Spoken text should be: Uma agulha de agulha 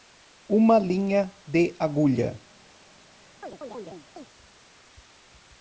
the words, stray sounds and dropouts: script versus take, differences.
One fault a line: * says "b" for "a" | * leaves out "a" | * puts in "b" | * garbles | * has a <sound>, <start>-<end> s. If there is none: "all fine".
* says "linha" for "agulha"
* has a chirp, 3.4-4.3 s